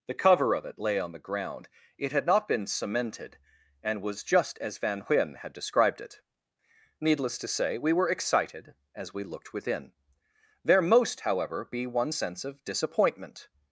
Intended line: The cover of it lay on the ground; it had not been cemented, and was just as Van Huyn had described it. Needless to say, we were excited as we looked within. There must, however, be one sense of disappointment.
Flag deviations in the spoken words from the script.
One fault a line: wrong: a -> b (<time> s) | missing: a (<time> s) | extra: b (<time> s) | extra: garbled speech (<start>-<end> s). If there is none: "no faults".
wrong: must -> most (10.8 s)